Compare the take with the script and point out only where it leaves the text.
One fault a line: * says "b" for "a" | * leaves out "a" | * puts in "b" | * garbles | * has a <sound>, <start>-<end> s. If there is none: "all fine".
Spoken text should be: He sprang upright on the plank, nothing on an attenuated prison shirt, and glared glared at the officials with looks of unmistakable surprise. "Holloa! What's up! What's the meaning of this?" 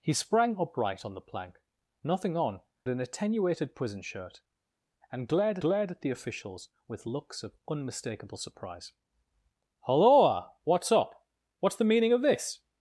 all fine